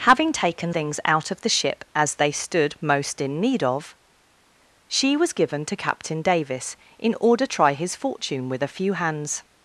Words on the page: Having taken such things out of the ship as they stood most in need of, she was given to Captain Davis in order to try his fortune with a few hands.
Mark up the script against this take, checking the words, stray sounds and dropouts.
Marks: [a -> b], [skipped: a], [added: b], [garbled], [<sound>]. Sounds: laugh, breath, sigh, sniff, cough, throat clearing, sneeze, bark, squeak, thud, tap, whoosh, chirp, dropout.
Having taken [skipped: such] things out of the ship as they stood most in need of, she was given to Captain Davis in order [skipped: to] try his fortune with a few hands.